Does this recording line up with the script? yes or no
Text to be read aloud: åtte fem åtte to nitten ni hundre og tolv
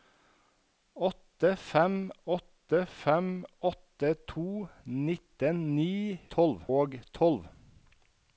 no